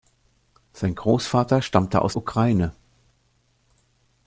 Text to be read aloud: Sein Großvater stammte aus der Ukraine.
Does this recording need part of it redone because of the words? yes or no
yes